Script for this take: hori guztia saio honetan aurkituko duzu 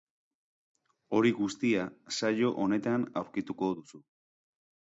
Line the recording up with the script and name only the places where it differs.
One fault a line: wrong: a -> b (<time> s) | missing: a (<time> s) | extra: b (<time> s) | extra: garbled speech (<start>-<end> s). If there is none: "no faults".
no faults